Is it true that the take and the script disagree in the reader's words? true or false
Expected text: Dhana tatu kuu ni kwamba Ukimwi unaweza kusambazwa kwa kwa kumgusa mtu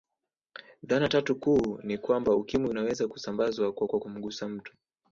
false